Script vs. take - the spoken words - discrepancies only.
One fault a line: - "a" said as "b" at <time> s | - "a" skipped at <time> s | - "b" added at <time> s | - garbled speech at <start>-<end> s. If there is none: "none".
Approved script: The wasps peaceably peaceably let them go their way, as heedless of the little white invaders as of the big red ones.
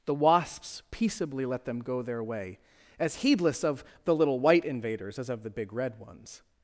- "peaceably" skipped at 1.4 s